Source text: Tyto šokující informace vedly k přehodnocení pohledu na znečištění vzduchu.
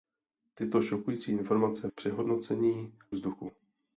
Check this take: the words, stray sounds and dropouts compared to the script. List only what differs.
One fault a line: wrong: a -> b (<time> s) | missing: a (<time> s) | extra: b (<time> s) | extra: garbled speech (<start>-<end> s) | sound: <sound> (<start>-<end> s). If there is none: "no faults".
missing: vedly (1.9 s)
missing: pohledu na znečištění (3.0 s)